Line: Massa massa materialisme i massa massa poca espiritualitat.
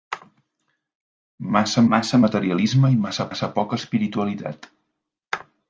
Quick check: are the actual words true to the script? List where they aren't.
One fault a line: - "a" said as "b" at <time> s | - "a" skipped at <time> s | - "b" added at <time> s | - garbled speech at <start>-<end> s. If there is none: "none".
none